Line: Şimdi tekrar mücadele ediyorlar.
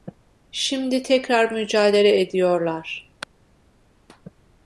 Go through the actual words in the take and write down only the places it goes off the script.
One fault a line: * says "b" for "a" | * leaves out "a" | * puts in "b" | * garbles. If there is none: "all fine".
all fine